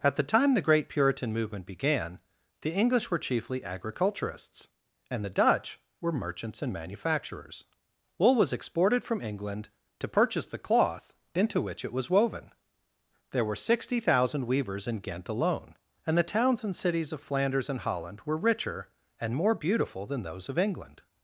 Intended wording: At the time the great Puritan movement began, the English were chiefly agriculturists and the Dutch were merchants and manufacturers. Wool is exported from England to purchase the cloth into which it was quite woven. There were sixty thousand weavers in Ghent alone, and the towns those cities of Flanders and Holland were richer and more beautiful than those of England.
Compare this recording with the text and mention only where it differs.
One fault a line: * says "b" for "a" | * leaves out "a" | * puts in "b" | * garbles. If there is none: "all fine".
* says "was" for "is"
* leaves out "quite"
* says "and" for "those"